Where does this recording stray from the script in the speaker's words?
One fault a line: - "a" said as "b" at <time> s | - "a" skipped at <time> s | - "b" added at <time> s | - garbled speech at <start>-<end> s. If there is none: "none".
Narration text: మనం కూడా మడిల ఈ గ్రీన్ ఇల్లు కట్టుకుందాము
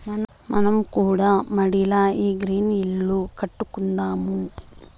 none